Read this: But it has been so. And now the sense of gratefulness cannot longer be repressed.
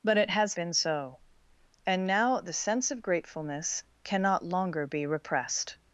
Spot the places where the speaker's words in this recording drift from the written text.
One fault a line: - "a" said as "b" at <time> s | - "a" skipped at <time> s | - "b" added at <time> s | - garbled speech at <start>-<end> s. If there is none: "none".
none